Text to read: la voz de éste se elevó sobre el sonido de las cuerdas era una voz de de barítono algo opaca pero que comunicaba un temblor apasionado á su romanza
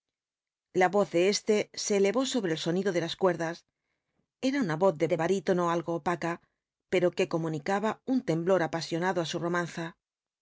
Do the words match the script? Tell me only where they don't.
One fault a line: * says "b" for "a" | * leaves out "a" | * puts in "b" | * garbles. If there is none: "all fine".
all fine